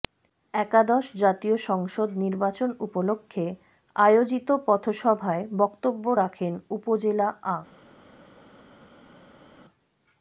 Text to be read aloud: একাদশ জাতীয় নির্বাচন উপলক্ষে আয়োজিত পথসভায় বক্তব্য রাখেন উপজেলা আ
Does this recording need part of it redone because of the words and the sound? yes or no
yes